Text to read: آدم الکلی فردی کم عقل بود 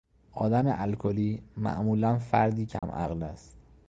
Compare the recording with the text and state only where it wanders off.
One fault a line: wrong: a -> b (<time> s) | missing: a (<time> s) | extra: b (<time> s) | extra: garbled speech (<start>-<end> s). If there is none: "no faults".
extra: معمولا (1.6 s)
wrong: بود -> است (3.2 s)